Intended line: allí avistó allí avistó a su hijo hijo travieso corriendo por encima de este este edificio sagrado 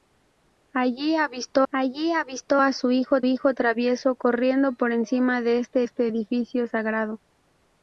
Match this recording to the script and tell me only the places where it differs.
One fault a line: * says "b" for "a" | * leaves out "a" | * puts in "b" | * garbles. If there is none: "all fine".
all fine